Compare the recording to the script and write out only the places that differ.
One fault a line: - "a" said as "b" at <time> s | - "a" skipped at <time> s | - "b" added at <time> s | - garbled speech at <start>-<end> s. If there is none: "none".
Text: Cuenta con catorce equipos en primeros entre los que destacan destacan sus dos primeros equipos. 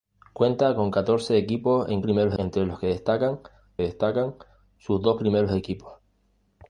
none